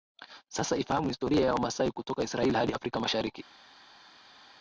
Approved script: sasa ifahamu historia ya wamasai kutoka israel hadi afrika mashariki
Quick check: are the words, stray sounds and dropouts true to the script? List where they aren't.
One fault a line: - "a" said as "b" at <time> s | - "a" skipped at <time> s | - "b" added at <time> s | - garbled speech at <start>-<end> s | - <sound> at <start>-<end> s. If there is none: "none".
none